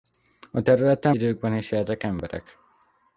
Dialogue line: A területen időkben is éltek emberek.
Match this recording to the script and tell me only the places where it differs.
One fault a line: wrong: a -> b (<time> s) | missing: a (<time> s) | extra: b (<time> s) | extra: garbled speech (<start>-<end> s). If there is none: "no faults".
no faults